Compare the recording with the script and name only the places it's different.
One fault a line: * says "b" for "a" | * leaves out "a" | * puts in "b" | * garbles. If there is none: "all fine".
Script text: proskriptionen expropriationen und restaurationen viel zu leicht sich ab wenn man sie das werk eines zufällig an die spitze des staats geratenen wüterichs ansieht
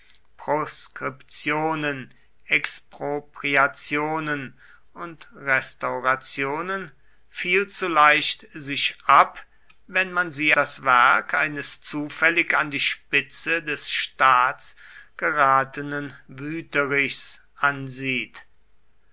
all fine